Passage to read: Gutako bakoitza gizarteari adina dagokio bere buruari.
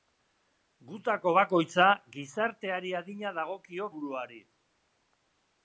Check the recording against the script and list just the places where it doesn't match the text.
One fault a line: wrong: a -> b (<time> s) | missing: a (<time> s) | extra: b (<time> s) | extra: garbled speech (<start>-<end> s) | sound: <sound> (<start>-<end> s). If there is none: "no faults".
missing: bere (3.9 s)